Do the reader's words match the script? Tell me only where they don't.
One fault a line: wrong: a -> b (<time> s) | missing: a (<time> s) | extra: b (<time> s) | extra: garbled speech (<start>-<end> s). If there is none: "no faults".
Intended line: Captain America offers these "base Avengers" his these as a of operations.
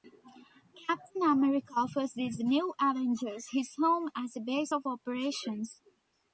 wrong: base -> new (2.4 s)
wrong: these -> home (3.7 s)
extra: base (4.4 s)